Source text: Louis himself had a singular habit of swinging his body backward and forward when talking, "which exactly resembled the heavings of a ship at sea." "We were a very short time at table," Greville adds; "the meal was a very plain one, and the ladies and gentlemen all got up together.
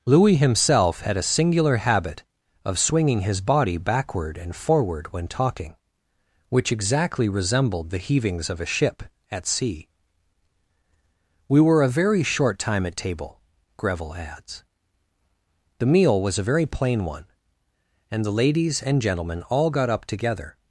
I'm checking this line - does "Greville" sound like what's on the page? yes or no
yes